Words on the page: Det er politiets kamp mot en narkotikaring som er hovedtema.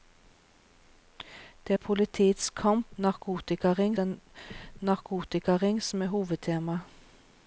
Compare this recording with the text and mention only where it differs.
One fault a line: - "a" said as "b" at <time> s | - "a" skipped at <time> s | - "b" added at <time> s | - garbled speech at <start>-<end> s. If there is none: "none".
- "mot" said as "narkotikaring" at 3.0 s